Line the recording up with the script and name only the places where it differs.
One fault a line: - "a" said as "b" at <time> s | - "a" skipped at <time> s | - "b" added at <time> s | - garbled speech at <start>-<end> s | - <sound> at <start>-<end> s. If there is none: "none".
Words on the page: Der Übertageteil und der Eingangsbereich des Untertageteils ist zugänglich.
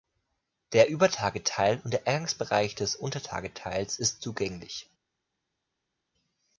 none